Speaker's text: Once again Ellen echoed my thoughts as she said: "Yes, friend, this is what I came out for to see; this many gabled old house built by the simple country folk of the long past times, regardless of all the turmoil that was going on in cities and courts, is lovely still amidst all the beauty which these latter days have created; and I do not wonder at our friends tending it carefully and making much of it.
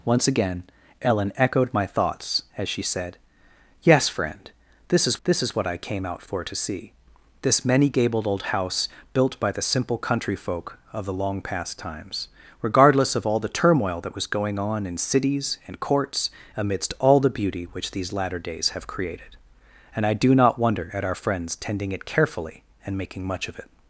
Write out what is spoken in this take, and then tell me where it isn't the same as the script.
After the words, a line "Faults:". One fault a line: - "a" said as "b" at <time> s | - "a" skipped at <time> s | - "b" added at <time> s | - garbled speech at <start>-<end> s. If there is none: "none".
Once again Ellen echoed my thoughts as she said: "Yes, friend, this is this is what I came out for to see; this many gabled old house built by the simple country folk of the long past times, regardless of all the turmoil that was going on in cities and courts, amidst all the beauty which these latter days have created; and I do not wonder at our friends tending it carefully and making much of it.
Faults:
- "this is" added at 5.2 s
- "is lovely still" skipped at 16.3 s